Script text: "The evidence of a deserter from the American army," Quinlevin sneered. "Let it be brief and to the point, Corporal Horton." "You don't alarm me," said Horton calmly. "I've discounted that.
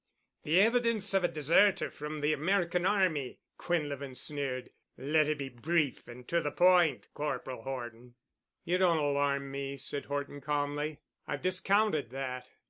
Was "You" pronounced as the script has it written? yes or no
yes